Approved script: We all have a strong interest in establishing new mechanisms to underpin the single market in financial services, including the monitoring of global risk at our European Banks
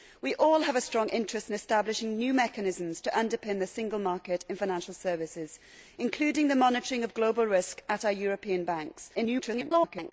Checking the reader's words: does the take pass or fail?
fail